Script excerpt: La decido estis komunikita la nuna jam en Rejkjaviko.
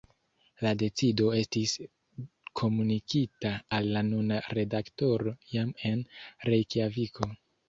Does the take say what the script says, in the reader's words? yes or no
no